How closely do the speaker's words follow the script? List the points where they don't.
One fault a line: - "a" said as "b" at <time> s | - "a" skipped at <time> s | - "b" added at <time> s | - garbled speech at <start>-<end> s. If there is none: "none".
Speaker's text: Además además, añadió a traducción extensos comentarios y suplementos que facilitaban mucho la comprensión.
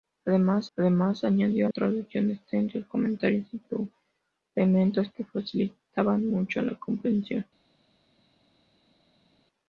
none